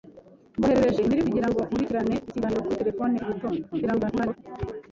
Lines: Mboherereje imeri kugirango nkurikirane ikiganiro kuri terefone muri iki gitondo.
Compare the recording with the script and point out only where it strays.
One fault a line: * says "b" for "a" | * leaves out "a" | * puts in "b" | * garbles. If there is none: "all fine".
* leaves out "muri"
* garbles